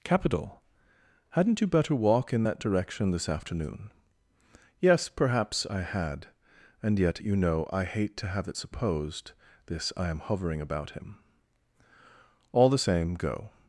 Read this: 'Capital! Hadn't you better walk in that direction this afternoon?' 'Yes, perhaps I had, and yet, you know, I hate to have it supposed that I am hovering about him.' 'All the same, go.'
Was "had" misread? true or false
false